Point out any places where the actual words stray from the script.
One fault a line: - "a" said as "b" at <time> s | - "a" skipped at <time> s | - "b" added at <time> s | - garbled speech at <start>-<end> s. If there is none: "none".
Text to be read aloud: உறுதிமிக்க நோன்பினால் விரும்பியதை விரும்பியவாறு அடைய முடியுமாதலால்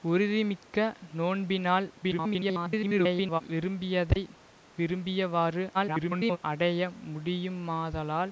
- garbled speech at 2.0-3.4 s
- garbled speech at 5.7-6.4 s